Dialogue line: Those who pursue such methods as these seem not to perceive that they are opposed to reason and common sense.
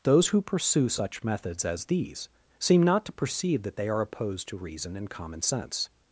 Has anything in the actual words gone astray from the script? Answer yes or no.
no